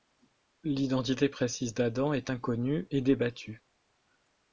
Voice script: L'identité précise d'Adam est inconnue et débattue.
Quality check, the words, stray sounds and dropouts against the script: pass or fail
pass